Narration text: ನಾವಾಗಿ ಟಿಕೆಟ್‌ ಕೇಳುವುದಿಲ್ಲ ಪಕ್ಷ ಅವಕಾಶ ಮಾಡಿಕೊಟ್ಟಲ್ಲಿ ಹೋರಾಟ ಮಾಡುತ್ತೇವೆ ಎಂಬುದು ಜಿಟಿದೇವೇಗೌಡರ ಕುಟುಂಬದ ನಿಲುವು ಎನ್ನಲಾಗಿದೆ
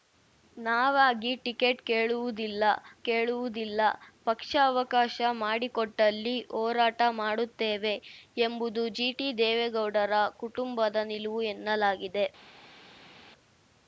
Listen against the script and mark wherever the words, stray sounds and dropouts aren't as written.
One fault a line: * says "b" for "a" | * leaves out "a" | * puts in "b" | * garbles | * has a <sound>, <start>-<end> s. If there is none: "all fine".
* puts in "ಕೇಳುವುದಿಲ್ಲ"